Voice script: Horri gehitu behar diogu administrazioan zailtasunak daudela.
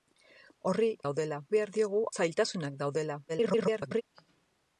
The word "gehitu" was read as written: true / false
false